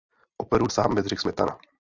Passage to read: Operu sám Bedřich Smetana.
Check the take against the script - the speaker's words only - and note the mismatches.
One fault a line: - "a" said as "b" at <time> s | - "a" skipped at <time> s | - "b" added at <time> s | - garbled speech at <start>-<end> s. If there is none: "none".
none